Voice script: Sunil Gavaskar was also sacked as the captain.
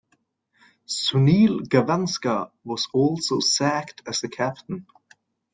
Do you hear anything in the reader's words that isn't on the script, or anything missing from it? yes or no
no